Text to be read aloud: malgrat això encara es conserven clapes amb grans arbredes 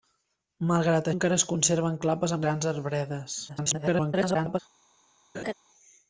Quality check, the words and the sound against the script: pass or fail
fail